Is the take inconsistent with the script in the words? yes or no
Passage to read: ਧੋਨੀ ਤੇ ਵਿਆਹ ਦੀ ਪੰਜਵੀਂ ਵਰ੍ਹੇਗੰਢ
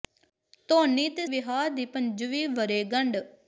no